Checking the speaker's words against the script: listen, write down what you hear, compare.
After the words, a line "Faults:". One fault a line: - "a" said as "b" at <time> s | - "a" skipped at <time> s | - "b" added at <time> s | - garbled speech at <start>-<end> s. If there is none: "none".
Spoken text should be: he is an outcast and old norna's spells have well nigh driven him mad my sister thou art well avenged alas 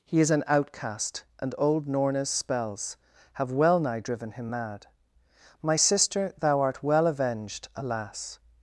he is an outcast and old norna's spells have well nigh driven him mad my sister thou art well avenged alas
Faults:
none